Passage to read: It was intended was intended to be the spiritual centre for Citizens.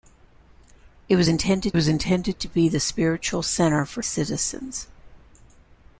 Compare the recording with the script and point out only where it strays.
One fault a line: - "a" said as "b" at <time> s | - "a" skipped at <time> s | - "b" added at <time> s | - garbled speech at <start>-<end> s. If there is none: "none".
none